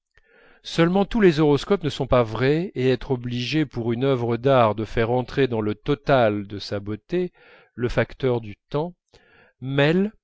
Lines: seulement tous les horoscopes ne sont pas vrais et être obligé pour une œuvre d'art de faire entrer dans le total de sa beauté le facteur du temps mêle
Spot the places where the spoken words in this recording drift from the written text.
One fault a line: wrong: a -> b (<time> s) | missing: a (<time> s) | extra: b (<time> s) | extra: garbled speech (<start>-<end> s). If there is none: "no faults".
no faults